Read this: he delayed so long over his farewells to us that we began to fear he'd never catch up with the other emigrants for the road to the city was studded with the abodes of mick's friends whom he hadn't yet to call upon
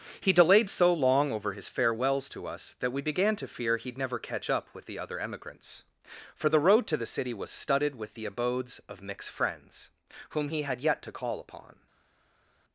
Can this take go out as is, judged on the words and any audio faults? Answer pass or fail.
fail